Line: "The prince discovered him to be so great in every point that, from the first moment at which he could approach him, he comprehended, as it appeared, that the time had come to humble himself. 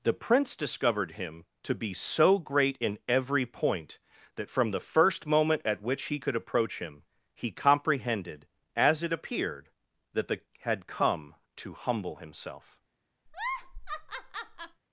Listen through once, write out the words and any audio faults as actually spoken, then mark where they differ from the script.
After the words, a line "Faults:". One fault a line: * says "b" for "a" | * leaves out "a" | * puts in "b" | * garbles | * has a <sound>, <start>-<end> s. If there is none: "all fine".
"The prince discovered him to be so great in every point that, from the first moment at which he could approach him, he comprehended, as it appeared, that the had come to humble himself.
Faults:
* leaves out "time"
* has a laugh, 13.3-14.8 s